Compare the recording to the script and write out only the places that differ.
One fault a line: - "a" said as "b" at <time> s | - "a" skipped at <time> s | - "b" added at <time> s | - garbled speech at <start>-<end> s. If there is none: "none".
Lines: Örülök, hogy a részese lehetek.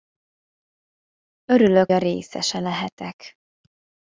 - "hogy" skipped at 1.9 s